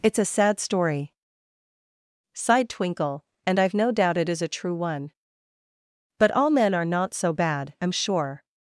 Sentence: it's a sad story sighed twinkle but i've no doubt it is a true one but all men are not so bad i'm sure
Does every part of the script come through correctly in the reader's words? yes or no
no